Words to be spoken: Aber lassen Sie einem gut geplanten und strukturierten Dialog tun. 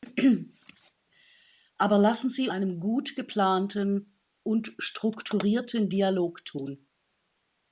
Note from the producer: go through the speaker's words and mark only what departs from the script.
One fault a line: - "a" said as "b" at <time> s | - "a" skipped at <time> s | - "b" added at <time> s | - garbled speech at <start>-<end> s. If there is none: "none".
none